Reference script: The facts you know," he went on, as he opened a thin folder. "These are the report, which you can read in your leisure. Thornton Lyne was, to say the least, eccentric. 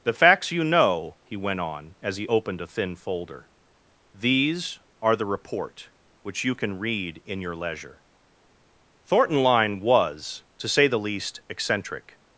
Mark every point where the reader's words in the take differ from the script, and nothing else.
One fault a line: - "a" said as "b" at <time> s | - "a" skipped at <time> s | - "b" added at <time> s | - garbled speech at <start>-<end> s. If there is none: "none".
none